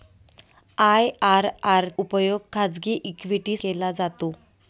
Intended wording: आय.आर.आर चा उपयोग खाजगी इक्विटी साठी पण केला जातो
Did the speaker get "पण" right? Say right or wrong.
wrong